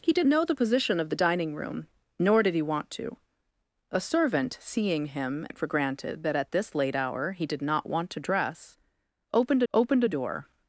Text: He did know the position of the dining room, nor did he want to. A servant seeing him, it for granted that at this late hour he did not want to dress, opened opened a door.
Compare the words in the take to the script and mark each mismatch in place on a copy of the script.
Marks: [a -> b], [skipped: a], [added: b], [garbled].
He did know the position of the dining room, nor did he want to. A servant seeing him, it for granted that at this late hour he did not want to dress, opened opened a door.